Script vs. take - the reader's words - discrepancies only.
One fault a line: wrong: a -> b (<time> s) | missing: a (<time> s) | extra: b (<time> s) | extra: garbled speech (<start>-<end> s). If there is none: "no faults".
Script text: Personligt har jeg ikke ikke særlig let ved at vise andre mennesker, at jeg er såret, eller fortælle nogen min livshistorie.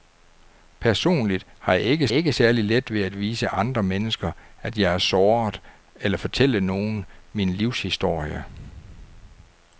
no faults